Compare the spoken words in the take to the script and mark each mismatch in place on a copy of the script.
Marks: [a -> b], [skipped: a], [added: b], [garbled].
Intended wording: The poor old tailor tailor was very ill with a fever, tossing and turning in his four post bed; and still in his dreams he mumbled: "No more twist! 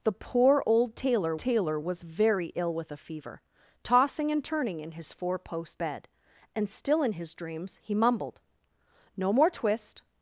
The poor old tailor tailor was very ill with a fever, tossing and turning in his four post bed; and still in his dreams he mumbled: "No more twist!